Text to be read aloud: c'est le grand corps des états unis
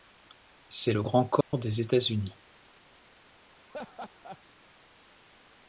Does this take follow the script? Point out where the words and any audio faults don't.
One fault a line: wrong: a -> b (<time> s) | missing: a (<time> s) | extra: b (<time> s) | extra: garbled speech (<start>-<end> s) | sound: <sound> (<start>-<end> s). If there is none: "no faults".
sound: dropout (1.4-1.5 s)
sound: laugh (3.7-4.4 s)